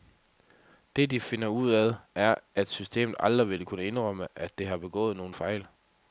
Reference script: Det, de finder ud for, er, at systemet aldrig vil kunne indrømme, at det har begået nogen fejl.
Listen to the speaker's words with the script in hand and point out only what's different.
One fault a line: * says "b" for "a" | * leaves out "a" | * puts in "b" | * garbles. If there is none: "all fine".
* says "af" for "for"